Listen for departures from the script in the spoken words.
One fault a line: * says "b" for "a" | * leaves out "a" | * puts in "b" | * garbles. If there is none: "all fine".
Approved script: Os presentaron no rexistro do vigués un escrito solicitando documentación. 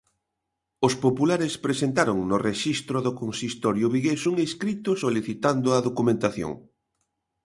* puts in "populares"
* puts in "consistorio"
* puts in "a"